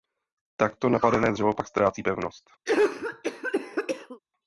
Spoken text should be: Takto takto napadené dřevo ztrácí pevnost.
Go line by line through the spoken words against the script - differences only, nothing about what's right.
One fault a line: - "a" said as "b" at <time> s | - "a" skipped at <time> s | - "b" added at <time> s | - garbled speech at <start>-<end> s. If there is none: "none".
- "takto" skipped at 0.9 s
- "pak" added at 1.5 s